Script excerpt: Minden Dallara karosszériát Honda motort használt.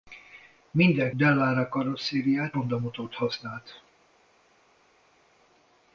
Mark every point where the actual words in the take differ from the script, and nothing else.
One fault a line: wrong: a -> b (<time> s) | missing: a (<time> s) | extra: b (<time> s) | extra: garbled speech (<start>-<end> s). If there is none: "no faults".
no faults